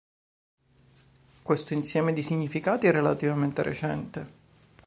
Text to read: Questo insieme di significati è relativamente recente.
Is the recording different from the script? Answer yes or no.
no